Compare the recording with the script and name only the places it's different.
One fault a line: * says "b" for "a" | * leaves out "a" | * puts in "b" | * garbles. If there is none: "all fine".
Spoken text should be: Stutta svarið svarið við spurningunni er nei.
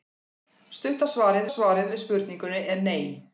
all fine